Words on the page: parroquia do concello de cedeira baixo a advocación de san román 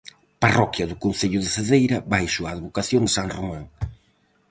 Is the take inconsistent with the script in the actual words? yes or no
no